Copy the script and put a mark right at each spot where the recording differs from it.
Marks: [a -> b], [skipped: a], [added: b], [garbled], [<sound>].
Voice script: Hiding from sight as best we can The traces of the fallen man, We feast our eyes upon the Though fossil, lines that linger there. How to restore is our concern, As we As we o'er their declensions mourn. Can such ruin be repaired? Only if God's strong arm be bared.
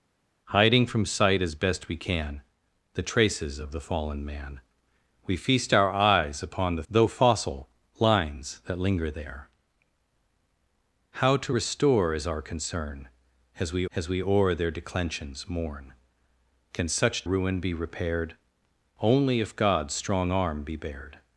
Hiding from sight as best we can The traces of the fallen man, We feast our eyes upon the Though fossil, lines that linger there. How to restore is our concern, As we As we o'er their declensions mourn. Can such ruin be repaired? Only if God's strong arm be bared.